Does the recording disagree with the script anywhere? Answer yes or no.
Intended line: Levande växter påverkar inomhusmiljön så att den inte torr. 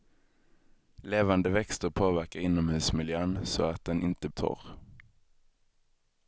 no